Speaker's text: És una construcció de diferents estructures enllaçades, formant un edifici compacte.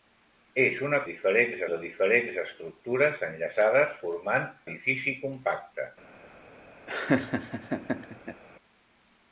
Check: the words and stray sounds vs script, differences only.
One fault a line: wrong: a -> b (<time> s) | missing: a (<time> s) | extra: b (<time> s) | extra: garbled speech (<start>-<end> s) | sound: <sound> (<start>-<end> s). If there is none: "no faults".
wrong: construcció -> diferents (1.1 s)
missing: un (4.5 s)
sound: laugh (6.9-8.4 s)